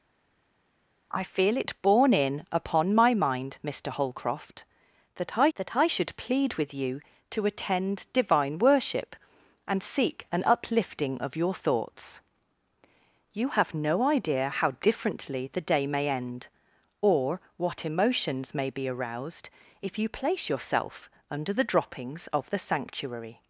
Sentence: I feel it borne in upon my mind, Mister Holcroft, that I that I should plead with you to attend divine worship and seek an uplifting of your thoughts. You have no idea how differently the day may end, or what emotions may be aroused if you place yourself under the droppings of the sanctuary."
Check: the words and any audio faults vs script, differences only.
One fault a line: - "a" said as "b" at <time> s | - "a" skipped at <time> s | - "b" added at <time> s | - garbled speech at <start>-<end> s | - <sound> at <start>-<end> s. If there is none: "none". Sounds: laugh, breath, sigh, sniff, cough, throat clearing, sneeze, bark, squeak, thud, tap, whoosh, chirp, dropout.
none